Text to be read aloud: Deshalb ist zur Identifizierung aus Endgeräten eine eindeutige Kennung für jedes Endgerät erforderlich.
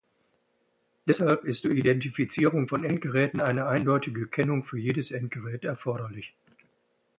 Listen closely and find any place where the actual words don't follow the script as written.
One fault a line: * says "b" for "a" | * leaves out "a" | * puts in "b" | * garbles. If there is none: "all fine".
* says "von" for "aus"